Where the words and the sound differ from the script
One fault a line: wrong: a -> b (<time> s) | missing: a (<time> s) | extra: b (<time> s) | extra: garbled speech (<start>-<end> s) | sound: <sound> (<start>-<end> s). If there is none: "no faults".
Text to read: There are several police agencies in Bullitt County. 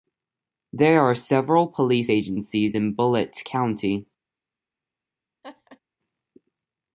sound: laugh (5.4-5.8 s)